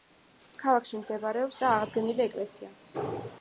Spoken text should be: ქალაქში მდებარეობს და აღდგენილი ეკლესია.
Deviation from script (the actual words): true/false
false